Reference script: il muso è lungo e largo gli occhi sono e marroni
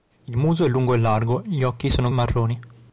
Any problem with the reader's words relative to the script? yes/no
no